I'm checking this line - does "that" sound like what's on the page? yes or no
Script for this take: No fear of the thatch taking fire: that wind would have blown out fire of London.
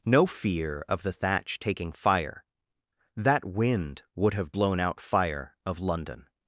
yes